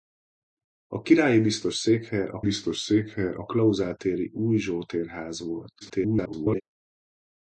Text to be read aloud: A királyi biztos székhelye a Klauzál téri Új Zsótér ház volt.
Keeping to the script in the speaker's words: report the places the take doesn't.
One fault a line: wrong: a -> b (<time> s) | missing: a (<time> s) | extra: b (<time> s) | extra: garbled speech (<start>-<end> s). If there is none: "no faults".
extra: biztos székhelye a (2.4 s)
extra: garbled speech (5.8-6.6 s)